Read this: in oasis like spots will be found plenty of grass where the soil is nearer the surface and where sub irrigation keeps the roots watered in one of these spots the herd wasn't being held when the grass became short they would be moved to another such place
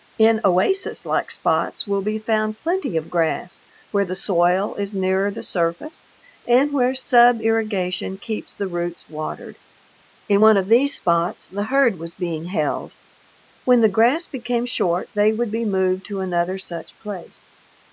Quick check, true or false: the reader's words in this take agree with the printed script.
false